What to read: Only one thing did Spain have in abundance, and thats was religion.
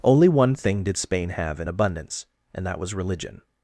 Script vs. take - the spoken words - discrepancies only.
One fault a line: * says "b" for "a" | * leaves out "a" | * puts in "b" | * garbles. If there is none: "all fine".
* says "that" for "thats"